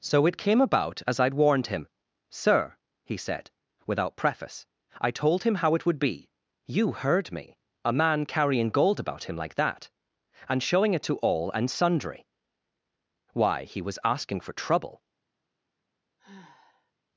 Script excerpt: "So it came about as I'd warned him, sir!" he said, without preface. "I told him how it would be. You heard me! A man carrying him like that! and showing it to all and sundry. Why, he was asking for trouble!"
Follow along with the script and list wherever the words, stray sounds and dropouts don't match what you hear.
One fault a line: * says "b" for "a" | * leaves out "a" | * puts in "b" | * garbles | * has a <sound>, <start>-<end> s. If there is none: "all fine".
* puts in "gold about"
* has a sigh, 16.2-16.9 s